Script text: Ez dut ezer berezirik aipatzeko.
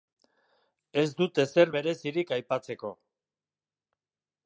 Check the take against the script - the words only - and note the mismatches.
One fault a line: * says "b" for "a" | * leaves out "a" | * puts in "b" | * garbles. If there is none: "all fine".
all fine